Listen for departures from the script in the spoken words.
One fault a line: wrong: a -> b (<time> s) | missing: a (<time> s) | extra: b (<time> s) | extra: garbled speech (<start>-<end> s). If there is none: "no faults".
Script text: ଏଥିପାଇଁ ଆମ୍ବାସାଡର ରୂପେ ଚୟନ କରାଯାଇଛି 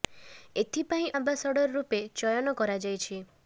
no faults